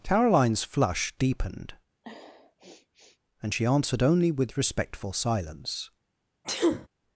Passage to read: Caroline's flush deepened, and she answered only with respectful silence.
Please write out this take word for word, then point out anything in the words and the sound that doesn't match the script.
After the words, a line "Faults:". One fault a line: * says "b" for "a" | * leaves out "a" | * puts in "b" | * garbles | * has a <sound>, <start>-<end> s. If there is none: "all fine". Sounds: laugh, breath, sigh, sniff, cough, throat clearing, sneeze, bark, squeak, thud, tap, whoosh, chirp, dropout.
Caroline's flush deepened, and she answered only with respectful silence.
Faults:
* has a sniff, 2.0-3.2 s
* has a sneeze, 6.4-6.9 s